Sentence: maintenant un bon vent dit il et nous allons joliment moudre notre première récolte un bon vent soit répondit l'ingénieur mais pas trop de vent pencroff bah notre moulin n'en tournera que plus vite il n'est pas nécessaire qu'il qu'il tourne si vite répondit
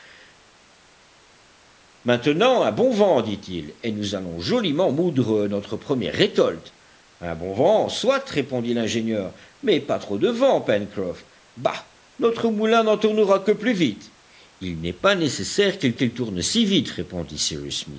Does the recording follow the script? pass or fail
pass